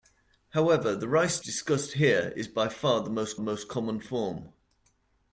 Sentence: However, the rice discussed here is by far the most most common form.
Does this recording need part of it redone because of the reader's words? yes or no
no